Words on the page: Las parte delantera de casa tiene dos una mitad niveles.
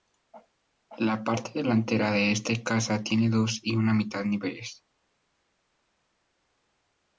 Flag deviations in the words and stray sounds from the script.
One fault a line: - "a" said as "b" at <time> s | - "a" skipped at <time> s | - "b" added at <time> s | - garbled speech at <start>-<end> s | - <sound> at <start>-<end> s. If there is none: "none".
- "Las" said as "La" at 1.0 s
- "este" added at 2.3 s
- "y" added at 3.6 s